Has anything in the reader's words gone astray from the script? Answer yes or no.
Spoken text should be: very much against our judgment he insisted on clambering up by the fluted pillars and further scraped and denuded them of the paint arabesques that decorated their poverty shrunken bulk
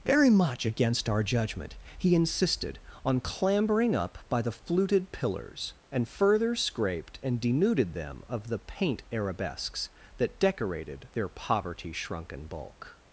no